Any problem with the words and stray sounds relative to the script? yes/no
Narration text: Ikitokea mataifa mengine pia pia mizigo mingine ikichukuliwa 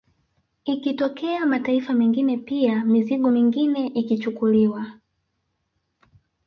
yes